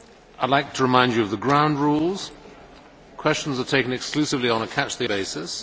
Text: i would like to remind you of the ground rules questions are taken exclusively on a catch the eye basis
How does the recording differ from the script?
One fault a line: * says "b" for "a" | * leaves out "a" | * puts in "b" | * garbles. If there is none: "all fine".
* leaves out "eye"